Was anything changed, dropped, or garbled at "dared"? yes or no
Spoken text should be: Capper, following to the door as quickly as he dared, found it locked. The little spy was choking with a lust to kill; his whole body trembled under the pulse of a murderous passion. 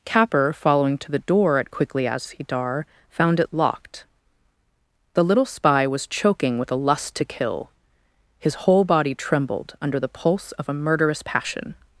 yes